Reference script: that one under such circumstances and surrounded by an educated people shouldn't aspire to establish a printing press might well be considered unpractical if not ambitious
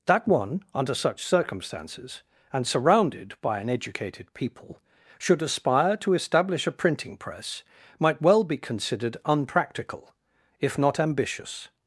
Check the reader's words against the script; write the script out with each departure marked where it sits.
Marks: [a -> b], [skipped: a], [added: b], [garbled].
that one under such circumstances and surrounded by an educated people [shouldn't -> should] aspire to establish a printing press might well be considered unpractical if not ambitious